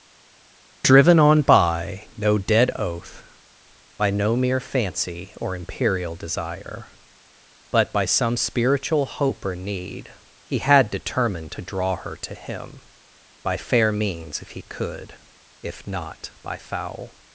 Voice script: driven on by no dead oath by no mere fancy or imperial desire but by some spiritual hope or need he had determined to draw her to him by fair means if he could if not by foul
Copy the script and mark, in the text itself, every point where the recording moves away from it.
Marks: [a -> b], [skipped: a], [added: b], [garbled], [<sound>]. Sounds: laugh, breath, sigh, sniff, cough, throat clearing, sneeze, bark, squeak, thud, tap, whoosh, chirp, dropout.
driven on by no dead oath by no mere fancy or imperial desire but by some spiritual hope or need he had determined to draw her to him by fair means if he could if not by foul